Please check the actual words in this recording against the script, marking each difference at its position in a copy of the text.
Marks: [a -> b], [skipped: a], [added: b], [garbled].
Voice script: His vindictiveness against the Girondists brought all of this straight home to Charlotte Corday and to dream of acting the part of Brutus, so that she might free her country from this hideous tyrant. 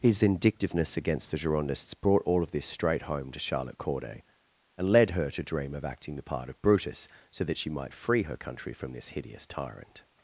His vindictiveness against the Girondists brought all of this straight home to Charlotte Corday and [added: led her] to dream of acting the part of Brutus, so that she might free her country from this hideous tyrant.